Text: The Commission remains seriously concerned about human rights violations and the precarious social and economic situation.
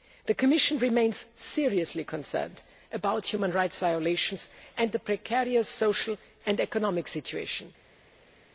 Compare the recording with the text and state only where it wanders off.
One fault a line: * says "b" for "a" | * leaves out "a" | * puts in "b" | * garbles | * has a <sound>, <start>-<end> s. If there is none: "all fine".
all fine